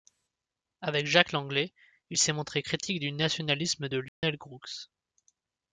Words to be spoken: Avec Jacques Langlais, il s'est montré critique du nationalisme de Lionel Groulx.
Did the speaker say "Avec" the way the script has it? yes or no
yes